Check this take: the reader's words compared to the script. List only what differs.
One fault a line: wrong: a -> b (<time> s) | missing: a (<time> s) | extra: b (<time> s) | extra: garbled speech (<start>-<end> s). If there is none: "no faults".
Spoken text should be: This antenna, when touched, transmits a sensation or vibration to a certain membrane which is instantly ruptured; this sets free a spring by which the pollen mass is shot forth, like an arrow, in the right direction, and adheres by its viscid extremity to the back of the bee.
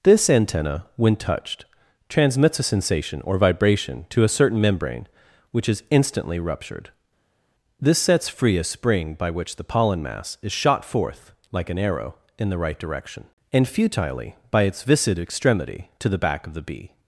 wrong: adheres -> futilely (13.7 s)